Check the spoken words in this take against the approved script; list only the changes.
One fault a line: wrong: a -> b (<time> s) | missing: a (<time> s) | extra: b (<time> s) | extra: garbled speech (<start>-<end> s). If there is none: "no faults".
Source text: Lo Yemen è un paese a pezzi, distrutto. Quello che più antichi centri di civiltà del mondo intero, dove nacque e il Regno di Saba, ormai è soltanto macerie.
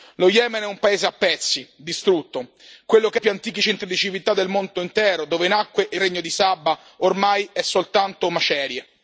no faults